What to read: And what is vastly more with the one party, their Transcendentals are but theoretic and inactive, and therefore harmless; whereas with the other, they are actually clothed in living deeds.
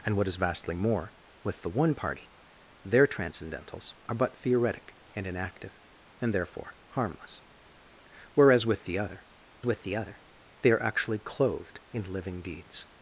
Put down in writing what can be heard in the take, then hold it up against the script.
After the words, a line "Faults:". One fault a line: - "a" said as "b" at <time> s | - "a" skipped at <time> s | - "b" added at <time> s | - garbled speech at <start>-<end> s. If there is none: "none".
And what is vastly more with the one party, their Transcendentals are but theoretic and inactive, and therefore harmless; whereas with the other with the other, they are actually clothed in living deeds.
Faults:
- "with the other" added at 9.6 s